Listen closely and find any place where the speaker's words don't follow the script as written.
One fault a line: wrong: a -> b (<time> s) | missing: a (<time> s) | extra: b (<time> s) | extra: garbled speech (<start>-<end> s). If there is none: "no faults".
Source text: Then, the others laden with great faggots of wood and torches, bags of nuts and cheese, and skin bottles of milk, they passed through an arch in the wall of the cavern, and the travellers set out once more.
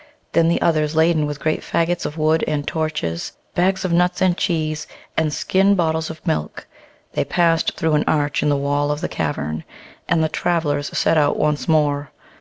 no faults